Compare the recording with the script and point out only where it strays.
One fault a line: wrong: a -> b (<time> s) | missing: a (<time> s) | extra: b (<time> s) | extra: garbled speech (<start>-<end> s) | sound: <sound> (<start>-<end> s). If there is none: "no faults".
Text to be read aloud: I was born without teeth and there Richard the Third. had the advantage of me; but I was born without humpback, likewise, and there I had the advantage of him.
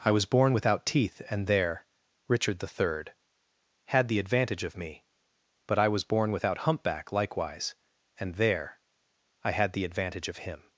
no faults